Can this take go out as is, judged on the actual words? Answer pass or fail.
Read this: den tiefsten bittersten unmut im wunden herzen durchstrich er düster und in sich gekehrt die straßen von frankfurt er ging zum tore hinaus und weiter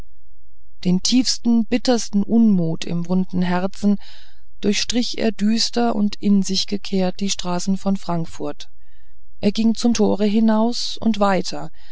pass